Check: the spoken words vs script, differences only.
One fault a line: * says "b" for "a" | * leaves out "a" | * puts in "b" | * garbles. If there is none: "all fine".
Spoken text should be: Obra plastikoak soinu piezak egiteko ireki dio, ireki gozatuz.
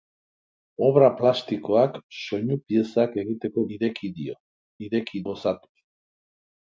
all fine